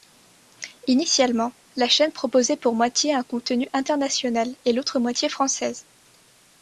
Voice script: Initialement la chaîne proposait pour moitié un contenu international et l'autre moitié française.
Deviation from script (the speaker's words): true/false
false